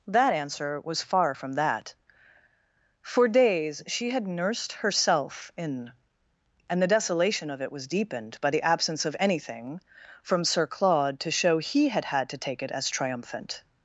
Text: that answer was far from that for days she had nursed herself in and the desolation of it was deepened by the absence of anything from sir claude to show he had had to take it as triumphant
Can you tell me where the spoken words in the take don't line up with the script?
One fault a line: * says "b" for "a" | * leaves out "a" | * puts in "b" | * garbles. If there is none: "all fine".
all fine